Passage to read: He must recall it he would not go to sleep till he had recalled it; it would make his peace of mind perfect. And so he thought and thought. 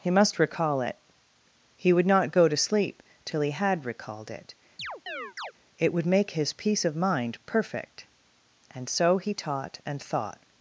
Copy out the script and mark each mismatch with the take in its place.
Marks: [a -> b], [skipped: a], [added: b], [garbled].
He must recall it he would not go to sleep till he had recalled it; it would make his peace of mind perfect. And so he [thought -> taught] and thought.